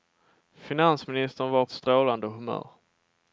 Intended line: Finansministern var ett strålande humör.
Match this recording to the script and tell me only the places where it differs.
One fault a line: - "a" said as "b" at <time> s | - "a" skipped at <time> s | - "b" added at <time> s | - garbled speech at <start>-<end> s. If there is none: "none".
none